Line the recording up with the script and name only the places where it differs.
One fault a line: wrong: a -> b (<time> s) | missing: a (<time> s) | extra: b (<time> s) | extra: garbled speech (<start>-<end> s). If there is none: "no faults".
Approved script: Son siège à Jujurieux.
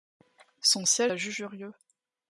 no faults